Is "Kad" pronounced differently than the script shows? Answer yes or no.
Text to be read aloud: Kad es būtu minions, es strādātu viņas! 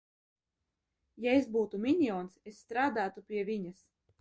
yes